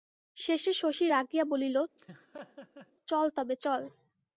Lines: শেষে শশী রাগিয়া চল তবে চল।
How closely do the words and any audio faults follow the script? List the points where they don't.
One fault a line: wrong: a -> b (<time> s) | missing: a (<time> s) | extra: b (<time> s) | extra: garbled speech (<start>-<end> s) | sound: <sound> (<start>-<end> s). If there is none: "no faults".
extra: বলিল (1.4 s)
sound: laugh (2.0-2.9 s)